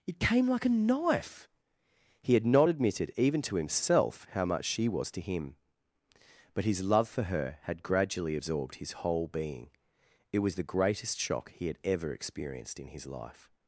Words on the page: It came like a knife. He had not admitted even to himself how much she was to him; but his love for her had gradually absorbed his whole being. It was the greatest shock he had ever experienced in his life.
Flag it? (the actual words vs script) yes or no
no